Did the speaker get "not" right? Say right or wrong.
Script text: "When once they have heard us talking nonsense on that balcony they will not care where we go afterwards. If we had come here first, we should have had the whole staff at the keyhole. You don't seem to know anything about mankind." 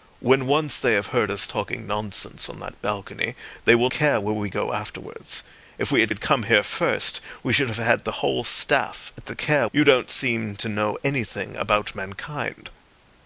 wrong